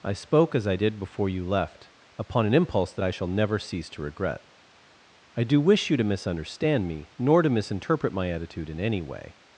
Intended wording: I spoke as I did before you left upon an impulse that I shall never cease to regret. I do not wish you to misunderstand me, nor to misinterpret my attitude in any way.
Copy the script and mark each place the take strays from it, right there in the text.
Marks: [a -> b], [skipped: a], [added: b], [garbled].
I spoke as I did before you left upon an impulse that I shall never cease to regret. I do [skipped: not] wish you to misunderstand me, nor to misinterpret my attitude in any way.